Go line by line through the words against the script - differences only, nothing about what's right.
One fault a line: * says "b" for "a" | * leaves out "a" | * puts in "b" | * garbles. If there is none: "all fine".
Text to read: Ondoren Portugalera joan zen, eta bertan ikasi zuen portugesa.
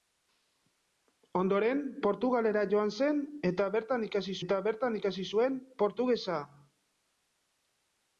* puts in "eta bertan ikasi"